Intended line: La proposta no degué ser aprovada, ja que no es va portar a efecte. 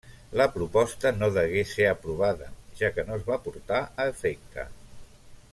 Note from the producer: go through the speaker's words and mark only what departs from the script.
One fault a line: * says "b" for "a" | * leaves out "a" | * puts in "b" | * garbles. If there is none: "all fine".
all fine